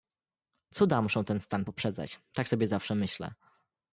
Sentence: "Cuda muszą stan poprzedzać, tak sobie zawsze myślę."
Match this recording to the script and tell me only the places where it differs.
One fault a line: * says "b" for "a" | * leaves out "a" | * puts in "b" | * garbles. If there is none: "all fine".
* puts in "ten"